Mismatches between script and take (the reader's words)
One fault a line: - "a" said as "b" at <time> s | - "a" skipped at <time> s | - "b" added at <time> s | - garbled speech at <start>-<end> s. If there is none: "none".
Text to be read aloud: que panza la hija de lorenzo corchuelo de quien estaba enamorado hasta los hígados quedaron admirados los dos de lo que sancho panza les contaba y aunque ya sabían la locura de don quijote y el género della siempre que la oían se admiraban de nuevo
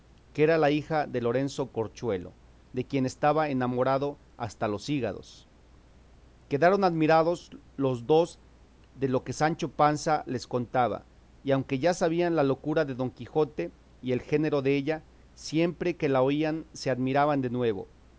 - "panza" said as "era" at 0.4 s